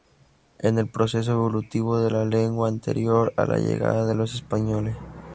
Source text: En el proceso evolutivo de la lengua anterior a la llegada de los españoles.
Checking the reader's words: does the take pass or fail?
pass